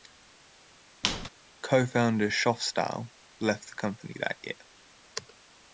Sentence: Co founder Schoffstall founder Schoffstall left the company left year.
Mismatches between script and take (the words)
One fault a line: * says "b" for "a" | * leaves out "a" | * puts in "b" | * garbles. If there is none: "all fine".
* leaves out "founder Schoffstall"
* says "that" for "left"